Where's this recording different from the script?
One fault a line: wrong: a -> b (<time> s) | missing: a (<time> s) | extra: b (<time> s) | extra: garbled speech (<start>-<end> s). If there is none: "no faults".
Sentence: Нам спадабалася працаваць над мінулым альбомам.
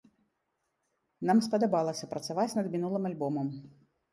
no faults